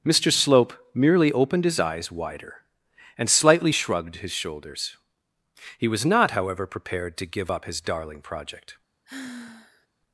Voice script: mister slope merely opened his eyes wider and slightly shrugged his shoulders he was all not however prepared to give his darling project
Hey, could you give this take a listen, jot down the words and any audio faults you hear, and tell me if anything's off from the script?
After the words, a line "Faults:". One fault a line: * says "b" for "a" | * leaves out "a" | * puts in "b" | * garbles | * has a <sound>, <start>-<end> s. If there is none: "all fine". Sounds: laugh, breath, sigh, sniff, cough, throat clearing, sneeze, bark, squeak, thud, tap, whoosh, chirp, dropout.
mister slope merely opened his eyes wider and slightly shrugged his shoulders he was not however prepared to give up his darling project
Faults:
* leaves out "all"
* puts in "up"
* has a sigh, 9.0-9.9 s